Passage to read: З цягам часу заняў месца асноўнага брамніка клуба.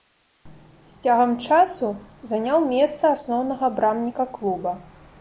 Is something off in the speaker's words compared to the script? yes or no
no